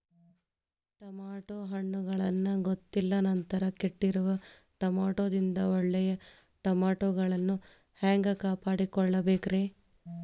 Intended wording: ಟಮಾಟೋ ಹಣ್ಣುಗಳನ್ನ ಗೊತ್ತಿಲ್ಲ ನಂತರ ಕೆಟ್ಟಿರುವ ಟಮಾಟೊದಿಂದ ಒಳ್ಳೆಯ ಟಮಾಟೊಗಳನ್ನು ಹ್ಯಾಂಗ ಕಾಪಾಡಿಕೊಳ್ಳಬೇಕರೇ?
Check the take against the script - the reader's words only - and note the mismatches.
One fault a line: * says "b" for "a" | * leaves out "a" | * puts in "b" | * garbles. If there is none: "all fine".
all fine